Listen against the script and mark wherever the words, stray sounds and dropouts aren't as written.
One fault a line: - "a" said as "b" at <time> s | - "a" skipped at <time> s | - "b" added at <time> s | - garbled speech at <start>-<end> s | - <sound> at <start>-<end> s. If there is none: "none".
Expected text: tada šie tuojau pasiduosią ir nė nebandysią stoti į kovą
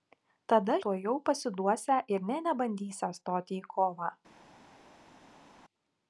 - "šie" skipped at 0.8 s